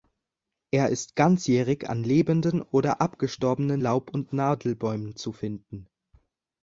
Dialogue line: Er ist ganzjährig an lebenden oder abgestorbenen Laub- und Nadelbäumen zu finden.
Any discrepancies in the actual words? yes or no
no